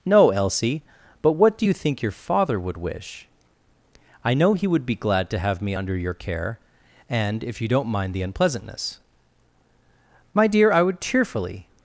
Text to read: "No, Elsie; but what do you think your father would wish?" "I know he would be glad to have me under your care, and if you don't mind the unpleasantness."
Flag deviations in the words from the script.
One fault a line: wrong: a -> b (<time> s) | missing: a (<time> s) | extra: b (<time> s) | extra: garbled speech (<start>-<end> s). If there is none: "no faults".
extra: My dear I would cheerfully (10.3 s)